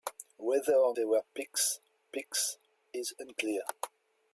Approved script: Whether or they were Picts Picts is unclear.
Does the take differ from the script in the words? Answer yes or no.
no